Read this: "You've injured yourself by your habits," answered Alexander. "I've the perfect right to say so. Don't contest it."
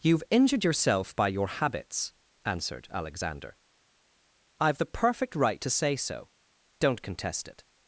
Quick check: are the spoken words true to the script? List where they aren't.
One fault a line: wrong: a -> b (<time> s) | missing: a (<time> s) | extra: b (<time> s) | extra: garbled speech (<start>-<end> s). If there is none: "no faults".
no faults